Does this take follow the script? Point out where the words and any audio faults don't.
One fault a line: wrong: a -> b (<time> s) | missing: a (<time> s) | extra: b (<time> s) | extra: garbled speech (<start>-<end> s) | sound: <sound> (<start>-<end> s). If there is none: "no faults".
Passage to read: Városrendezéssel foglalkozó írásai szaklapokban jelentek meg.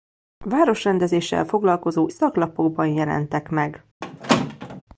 missing: írásai (2.1 s)
sound: squeak (4.0-4.8 s)